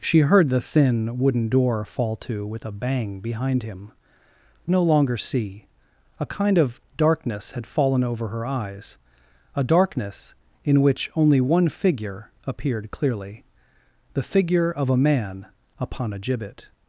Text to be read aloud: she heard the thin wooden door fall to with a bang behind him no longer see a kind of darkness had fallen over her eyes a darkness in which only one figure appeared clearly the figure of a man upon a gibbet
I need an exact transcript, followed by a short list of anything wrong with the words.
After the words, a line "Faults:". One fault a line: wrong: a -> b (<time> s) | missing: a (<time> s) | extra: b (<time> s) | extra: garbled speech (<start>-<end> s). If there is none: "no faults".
she heard the thin wooden door fall to with a bang behind him no longer see a kind of darkness had fallen over her eyes a darkness in which only one figure appeared clearly the figure of a man upon a gibbet
Faults:
no faults